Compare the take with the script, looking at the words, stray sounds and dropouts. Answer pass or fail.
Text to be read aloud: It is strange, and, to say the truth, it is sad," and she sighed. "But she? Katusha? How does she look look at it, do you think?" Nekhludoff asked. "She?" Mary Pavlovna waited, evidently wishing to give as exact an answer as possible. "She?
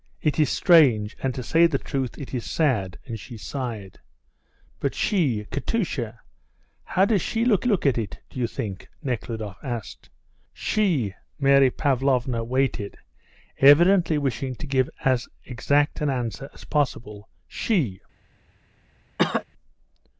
fail